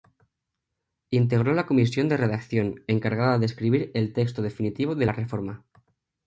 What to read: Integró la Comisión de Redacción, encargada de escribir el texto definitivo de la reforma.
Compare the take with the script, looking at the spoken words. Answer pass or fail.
pass